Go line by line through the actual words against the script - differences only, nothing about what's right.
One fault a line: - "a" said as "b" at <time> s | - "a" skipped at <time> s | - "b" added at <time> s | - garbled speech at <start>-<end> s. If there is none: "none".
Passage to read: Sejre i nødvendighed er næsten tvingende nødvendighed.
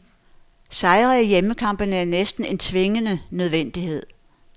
- "nødvendighed" said as "hjemmekampene" at 1.3 s
- "en" added at 2.5 s